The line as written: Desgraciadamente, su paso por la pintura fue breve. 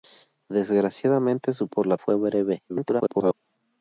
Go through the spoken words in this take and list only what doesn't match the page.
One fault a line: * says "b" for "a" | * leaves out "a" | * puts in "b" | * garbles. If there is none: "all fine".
* leaves out "paso"
* leaves out "pintura"
* garbles